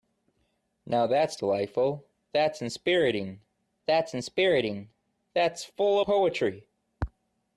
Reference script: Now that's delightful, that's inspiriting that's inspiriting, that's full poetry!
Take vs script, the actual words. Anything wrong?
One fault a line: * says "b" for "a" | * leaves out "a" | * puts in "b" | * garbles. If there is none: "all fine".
all fine